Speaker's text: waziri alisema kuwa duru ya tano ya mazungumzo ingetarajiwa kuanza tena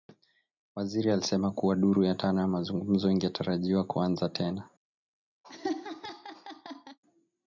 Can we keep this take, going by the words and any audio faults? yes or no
no